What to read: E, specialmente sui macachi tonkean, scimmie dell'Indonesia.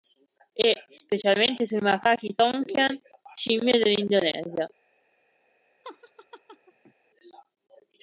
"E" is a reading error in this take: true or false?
false